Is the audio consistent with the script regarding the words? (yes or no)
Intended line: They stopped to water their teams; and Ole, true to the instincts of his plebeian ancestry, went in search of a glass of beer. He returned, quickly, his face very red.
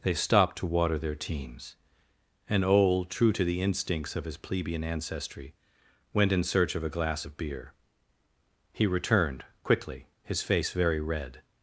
yes